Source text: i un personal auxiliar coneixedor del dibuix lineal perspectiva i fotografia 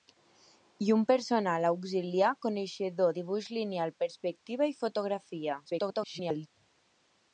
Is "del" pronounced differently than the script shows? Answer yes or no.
yes